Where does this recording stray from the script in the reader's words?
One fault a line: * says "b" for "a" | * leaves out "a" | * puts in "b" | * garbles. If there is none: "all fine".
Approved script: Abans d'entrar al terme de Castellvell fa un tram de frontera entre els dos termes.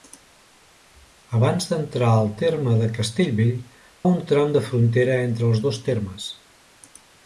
* leaves out "fa"